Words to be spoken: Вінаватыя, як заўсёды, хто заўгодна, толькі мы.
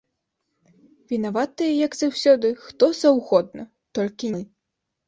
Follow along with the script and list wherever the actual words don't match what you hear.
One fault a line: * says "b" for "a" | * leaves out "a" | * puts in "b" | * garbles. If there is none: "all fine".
all fine